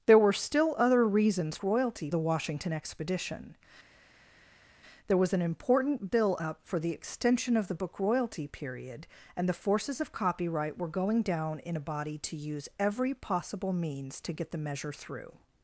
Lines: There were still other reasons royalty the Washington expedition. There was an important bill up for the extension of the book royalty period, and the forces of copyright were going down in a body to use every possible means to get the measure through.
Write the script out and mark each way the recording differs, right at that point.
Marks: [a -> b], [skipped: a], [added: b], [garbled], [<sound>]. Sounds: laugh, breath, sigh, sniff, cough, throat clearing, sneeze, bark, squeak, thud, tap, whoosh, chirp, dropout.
There were still other reasons royalty the Washington expedition. There was an important bill up for the extension of the book royalty period, and the forces of copyright were going down in a body to use every possible means to get the measure through.